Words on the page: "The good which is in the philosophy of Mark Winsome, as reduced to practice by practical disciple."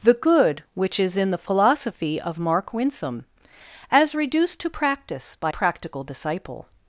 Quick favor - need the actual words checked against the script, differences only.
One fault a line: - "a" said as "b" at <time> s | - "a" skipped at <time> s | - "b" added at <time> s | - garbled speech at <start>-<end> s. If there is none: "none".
none